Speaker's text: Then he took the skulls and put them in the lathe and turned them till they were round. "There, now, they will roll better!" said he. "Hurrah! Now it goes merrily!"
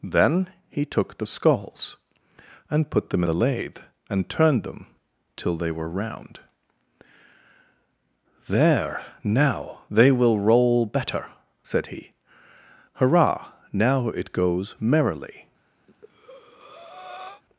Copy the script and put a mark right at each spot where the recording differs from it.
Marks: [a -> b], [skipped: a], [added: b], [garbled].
Then he took the skulls and put them [skipped: in] the lathe and turned them till they were round. "There, now, they will roll better!" said he. "Hurrah! Now it goes merrily!"